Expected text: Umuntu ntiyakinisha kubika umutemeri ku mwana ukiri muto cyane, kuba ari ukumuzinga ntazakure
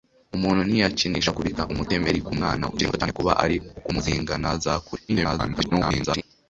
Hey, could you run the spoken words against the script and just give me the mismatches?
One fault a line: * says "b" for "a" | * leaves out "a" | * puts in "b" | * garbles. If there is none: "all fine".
* garbles